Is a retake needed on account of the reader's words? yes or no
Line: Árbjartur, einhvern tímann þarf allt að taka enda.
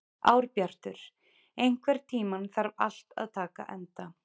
no